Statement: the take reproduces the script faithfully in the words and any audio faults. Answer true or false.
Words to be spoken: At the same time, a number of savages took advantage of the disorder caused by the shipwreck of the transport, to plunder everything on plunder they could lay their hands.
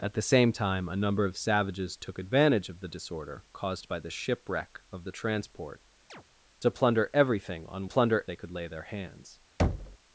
false